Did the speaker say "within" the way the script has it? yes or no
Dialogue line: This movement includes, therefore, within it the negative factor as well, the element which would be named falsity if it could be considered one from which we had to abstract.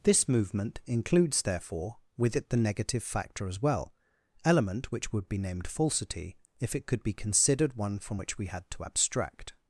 no